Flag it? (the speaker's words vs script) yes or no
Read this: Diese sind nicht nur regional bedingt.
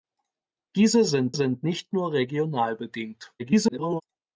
yes